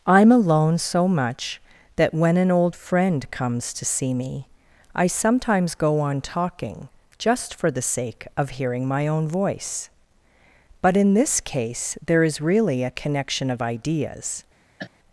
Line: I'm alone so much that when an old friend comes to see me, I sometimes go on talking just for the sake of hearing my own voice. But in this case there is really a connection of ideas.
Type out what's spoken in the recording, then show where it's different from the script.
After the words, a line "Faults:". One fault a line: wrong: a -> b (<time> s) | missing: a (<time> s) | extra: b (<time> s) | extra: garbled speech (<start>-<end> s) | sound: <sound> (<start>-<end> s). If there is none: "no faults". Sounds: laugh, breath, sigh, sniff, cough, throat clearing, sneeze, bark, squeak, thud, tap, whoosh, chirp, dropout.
I'm alone so much that when an old friend comes to see me, I sometimes go on talking just for the sake of hearing my own voice. But in this case there is really a connection of ideas.
Faults:
sound: cough (14.8-14.9 s)